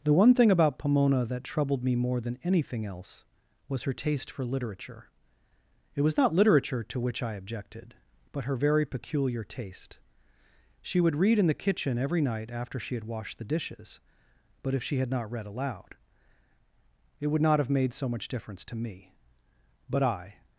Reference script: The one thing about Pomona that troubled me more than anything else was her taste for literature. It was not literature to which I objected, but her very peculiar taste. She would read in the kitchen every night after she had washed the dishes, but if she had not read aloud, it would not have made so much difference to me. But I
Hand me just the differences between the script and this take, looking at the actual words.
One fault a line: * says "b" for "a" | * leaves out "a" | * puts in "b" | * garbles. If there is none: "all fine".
all fine